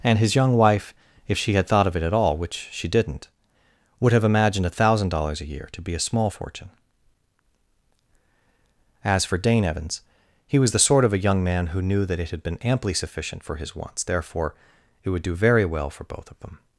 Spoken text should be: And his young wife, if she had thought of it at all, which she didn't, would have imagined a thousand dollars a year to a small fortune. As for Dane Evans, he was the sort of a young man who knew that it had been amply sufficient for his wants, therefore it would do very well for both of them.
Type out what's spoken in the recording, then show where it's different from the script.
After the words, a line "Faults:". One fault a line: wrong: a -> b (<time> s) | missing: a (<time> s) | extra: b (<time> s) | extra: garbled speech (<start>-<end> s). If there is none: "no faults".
And his young wife, if she had thought of it at all, which she didn't, would have imagined a thousand dollars a year to be a small fortune. As for Dane Evans, he was the sort of a young man who knew that it had been amply sufficient for his wants, therefore it would do very well for both of them.
Faults:
extra: be (5.8 s)